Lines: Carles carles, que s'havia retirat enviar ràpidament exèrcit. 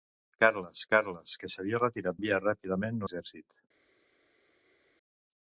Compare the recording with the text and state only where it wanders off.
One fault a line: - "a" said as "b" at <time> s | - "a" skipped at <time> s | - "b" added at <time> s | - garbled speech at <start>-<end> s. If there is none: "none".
none